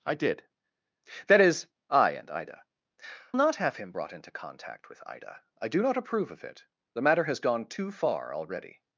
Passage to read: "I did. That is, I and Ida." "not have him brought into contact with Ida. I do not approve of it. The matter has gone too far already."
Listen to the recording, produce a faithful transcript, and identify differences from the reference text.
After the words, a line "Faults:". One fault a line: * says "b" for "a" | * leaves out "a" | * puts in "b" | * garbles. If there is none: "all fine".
"I did. That is, I and Ida." "not have him brought into contact with Ida. I do not approve of it. The matter has gone too far already."
Faults:
all fine